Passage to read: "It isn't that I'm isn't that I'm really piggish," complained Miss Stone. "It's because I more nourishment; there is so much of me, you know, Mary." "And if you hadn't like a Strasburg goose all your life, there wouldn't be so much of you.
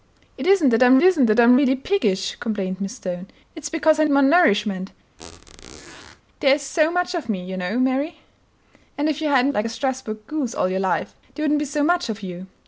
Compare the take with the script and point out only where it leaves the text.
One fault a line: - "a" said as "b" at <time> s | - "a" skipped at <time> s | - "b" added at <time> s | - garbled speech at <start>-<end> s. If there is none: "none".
none